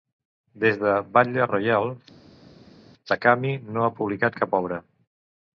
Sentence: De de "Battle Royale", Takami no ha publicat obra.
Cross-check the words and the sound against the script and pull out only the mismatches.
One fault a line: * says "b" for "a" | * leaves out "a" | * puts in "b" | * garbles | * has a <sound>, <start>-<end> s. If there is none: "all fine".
* says "Des" for "De"
* puts in "cap"